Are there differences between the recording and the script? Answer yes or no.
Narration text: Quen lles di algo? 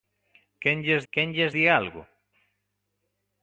yes